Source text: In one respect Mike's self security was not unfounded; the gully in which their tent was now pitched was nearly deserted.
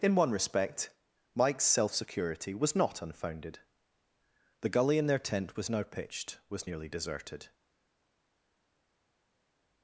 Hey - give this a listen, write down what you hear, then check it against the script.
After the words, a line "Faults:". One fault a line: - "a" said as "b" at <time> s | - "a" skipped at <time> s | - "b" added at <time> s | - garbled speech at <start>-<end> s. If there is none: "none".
In one respect Mike's self security was not unfounded; the gully in their tent was now pitched was nearly deserted.
Faults:
- "which" skipped at 5.0 s